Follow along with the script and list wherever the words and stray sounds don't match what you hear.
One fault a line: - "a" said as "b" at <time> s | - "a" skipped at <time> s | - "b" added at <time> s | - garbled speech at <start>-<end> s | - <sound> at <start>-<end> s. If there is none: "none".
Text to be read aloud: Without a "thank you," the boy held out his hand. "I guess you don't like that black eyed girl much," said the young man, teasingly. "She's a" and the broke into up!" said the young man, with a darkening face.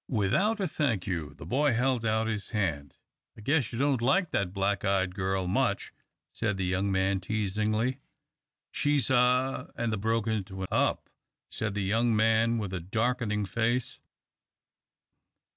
none